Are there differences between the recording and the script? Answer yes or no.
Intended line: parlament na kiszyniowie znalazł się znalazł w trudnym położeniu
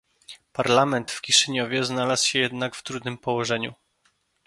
yes